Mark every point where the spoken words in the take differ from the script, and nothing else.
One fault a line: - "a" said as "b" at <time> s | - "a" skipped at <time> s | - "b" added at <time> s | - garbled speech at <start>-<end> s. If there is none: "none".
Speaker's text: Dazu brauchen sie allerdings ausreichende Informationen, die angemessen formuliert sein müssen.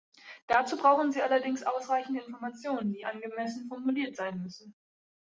none